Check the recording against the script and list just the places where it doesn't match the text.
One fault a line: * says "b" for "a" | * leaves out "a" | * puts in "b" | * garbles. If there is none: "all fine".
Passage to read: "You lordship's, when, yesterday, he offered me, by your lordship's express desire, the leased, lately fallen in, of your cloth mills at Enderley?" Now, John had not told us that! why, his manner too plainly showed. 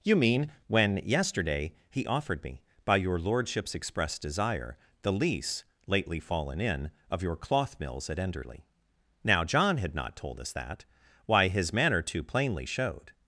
* says "mean" for "lordship's"
* says "lease" for "leased"